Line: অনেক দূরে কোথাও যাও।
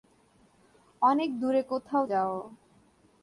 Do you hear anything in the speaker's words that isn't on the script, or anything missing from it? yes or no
no